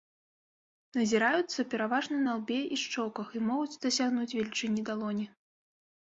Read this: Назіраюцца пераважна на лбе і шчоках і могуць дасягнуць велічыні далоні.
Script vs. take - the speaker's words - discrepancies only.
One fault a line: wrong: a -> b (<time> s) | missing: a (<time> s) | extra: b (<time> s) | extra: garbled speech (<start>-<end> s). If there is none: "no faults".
no faults